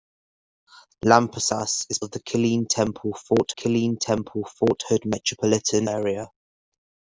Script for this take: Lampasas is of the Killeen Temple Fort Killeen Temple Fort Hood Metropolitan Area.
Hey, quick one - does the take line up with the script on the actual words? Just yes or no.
yes